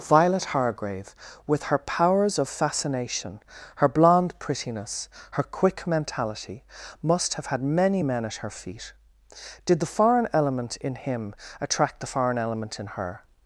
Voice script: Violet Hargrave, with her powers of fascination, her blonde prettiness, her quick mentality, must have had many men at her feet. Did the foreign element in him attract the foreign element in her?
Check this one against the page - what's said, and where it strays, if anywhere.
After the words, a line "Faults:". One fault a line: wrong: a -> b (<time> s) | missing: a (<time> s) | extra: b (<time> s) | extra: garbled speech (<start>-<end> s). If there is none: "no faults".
Violet Hargrave, with her powers of fascination, her blonde prettiness, her quick mentality, must have had many men at her feet. Did the foreign element in him attract the foreign element in her?
Faults:
no faults